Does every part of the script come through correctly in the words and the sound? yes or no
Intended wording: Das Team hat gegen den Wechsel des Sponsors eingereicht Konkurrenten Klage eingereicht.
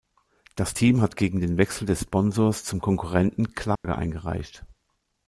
no